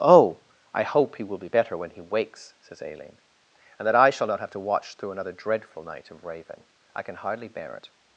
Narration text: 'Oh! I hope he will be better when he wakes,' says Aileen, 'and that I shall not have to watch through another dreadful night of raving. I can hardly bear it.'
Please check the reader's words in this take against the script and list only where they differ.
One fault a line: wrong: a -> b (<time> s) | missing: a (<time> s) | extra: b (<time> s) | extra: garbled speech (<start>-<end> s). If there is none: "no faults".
no faults